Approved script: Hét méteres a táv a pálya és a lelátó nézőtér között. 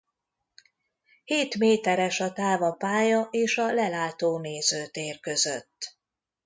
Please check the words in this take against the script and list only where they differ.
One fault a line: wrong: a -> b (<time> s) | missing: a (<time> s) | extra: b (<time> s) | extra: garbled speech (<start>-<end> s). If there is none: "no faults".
no faults